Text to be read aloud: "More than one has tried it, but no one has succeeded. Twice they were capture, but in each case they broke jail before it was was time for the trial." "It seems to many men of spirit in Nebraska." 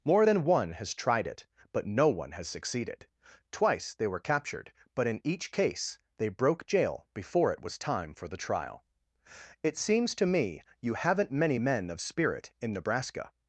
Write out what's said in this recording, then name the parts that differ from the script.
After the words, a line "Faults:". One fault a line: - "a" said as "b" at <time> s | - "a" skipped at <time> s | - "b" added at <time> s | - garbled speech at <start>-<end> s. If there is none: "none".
"More than one has tried it, but no one has succeeded. Twice they were captured, but in each case they broke jail before it was time for the trial." "It seems to me you haven't many men of spirit in Nebraska."
Faults:
- "capture" said as "captured" at 4.2 s
- "was" skipped at 7.8 s
- "me you haven't" added at 10.3 s